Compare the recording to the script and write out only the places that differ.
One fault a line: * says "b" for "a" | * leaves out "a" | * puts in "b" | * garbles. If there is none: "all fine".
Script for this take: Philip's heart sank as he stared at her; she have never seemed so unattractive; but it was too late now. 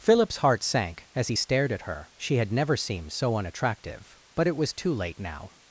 * says "had" for "have"